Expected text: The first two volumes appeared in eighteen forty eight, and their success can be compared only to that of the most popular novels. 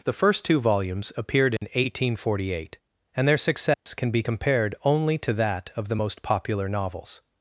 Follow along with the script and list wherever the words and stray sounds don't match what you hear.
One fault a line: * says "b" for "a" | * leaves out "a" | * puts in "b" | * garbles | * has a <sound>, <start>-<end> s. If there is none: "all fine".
* has a dropout, 1.6-1.6 s
* has a dropout, 3.7-3.9 s